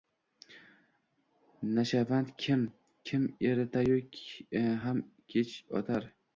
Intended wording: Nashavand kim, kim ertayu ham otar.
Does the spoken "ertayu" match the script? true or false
true